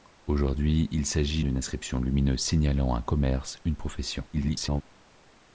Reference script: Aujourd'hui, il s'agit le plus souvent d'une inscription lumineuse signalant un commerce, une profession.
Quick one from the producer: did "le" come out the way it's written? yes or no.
no